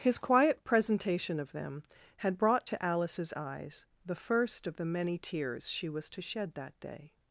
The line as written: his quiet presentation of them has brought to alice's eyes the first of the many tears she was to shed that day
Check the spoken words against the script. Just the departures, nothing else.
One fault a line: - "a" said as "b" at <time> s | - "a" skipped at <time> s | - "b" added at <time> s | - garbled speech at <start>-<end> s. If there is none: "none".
- "has" said as "had" at 2.2 s